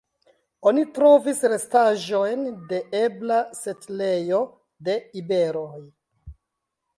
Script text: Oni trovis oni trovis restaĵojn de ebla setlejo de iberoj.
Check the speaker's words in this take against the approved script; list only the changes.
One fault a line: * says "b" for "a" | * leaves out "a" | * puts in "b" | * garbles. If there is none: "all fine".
* leaves out "oni trovis"